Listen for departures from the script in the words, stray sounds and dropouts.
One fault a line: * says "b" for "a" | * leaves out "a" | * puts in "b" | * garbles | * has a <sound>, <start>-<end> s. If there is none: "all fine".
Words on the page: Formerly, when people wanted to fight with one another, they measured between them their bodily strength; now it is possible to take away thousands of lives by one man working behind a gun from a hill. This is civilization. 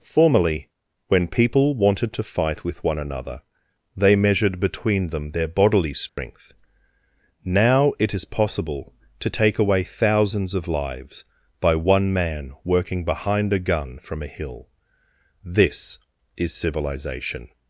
* has a dropout, 6.1-6.2 s